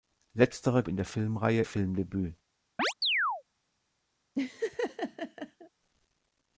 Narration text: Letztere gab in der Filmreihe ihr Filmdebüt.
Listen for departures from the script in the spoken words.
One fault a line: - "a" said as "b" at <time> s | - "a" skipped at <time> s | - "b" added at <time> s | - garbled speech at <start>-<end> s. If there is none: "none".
- "gab" skipped at 0.8 s
- "ihr" skipped at 1.6 s